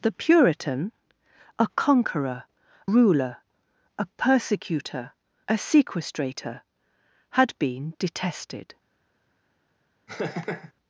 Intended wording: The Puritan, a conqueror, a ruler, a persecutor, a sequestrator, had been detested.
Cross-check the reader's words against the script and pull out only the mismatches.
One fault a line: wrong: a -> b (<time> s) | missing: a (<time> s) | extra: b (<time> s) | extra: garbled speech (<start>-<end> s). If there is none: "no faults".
missing: a (2.5 s)